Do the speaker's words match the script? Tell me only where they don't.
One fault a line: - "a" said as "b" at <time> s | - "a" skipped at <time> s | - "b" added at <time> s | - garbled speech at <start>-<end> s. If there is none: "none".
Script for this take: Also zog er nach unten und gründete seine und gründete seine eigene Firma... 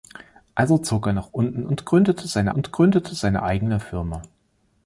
none